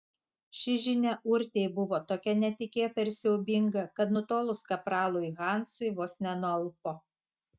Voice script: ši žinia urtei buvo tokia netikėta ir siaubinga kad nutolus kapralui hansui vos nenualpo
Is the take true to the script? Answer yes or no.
yes